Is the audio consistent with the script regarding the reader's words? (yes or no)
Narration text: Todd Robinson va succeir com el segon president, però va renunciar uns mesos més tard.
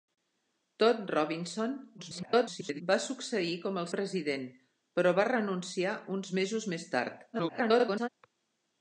no